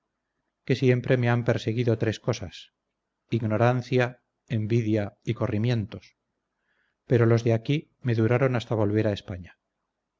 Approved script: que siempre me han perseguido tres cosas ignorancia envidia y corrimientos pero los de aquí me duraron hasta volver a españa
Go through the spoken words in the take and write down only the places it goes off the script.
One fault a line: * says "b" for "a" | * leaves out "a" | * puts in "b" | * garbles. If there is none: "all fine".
all fine